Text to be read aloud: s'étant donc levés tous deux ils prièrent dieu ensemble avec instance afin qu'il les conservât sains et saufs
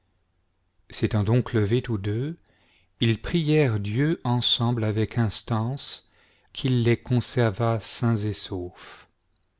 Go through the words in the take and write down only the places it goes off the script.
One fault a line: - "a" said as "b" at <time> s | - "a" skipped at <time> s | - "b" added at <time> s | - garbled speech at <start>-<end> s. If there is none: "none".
- "afin" skipped at 6.1 s